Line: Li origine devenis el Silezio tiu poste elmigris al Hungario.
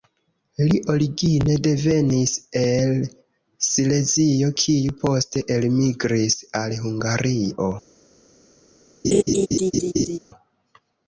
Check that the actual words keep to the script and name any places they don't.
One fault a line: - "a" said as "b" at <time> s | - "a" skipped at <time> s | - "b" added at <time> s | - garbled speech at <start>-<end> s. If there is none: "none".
- "tiu" said as "kiu" at 4.6 s